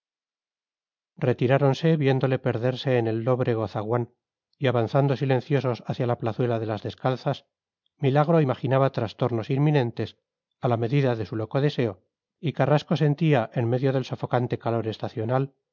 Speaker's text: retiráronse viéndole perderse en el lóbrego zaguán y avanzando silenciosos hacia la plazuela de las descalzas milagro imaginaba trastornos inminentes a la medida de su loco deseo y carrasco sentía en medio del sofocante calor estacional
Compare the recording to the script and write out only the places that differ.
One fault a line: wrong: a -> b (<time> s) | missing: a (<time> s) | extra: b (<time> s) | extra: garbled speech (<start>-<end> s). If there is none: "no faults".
no faults